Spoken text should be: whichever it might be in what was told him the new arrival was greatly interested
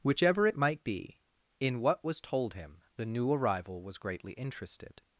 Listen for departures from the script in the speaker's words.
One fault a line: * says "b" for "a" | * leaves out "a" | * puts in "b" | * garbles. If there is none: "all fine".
all fine